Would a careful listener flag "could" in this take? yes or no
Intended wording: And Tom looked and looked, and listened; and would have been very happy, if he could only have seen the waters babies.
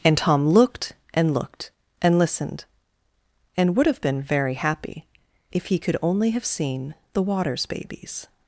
no